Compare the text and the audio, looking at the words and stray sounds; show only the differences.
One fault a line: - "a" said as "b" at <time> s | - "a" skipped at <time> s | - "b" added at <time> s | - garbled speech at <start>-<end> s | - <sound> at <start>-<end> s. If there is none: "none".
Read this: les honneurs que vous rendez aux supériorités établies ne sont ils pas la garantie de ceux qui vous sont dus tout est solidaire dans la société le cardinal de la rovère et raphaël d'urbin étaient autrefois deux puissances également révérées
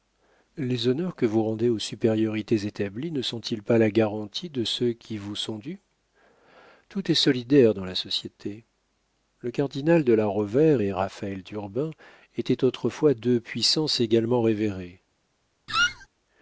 - squeak at 15.7-16.1 s